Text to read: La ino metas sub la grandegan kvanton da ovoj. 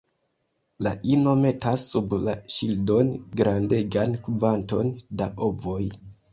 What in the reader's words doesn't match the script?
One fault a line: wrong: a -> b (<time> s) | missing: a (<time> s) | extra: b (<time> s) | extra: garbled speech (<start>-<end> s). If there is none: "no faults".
extra: ŝildon (2.5 s)